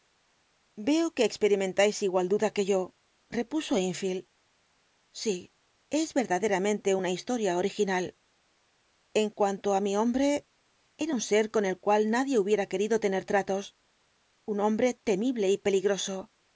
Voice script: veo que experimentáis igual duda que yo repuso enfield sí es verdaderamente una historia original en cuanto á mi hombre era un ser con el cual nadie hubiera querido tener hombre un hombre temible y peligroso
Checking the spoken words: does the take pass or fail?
fail